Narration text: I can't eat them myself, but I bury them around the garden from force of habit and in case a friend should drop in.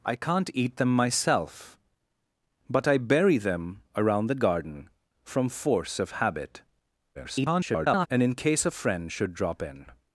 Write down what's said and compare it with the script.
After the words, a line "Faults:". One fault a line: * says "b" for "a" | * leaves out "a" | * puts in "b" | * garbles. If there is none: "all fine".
I can't eat them myself, but I bury them around the garden from force of habit [garbled] and in case a friend should drop in.
Faults:
* garbles